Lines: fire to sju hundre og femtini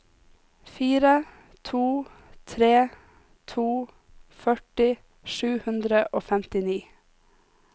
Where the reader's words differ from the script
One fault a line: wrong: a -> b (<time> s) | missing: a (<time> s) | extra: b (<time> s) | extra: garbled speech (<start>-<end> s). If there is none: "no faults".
extra: tre to førti (2.5 s)